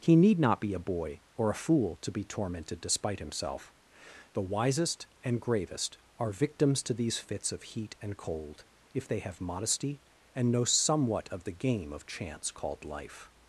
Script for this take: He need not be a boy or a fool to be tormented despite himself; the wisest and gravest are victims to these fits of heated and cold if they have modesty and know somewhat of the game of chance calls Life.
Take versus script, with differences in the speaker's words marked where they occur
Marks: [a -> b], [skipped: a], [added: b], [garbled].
He need not be a boy or a fool to be tormented despite himself; the wisest and gravest are victims to these fits of [heated -> heat] and cold if they have modesty and know somewhat of the game of chance [calls -> called] Life.